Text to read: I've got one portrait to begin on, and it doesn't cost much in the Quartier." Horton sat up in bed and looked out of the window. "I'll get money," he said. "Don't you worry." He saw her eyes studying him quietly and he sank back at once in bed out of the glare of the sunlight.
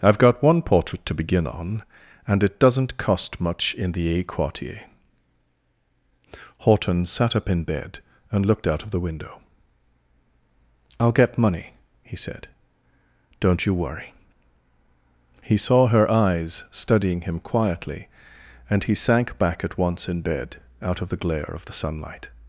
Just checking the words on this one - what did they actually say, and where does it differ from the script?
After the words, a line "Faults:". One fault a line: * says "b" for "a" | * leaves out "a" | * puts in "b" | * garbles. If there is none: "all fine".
I've got one portrait to begin on, and it doesn't cost much in the a Quartier." Horton sat up in bed and looked out of the window. "I'll get money," he said. "Don't you worry." He saw her eyes studying him quietly and he sank back at once in bed out of the glare of the sunlight.
Faults:
* puts in "a"